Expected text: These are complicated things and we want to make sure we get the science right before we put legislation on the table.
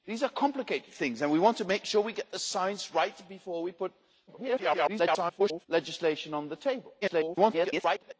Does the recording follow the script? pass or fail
fail